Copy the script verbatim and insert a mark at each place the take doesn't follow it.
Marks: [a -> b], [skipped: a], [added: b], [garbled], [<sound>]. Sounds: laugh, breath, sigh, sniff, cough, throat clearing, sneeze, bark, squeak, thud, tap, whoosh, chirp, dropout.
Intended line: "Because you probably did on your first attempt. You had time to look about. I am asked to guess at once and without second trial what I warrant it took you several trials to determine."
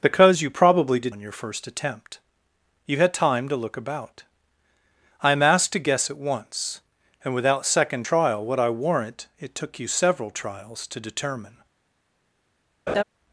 "Because you probably did on your first attempt. You had time to look about. I am asked to guess at once and without second trial what I warrant it took you several trials to determine." [laugh]